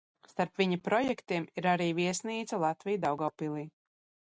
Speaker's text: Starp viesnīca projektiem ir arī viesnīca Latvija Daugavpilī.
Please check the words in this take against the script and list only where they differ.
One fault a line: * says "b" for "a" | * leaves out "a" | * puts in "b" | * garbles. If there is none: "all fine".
* says "viņa" for "viesnīca"